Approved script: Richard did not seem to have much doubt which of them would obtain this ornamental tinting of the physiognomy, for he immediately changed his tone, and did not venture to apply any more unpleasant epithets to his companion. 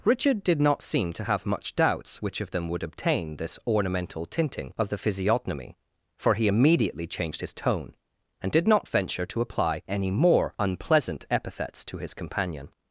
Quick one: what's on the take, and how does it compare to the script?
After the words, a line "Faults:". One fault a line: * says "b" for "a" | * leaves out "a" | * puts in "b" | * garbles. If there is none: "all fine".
Richard did not seem to have much doubts which of them would obtain this ornamental tinting of the physiognomy, for he immediately changed his tone, and did not venture to apply any more unpleasant epithets to his companion.
Faults:
* says "doubts" for "doubt"